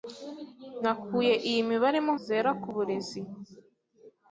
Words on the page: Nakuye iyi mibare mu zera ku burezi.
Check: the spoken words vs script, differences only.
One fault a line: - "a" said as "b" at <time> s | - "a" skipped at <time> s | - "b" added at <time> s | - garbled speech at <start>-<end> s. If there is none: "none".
none